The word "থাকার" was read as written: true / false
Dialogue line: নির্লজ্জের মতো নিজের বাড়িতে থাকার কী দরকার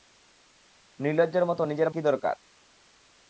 false